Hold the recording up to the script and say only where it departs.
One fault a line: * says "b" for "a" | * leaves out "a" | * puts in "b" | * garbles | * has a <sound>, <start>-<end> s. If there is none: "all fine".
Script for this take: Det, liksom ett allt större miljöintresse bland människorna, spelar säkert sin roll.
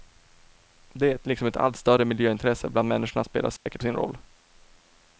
* has a dropout, 3.6-3.7 s